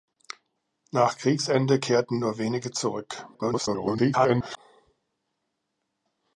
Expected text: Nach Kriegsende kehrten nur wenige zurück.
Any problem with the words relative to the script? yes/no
yes